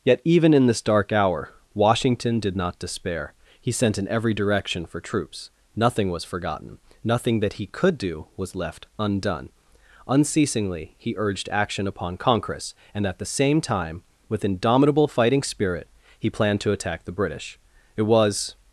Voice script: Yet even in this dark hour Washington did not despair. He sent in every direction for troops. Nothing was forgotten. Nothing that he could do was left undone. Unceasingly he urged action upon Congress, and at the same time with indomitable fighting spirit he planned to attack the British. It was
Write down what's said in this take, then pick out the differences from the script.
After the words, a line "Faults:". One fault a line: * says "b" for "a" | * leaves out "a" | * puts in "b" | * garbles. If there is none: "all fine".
Yet even in this dark hour Washington did not despair. He sent in every direction for troops. Nothing was forgotten. Nothing that he could do was left undone. Unceasingly he urged action upon Congress, and at the same time with indomitable fighting spirit he planned to attack the British. It was
Faults:
all fine